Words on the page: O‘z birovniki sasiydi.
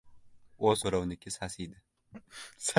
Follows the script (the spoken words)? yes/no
yes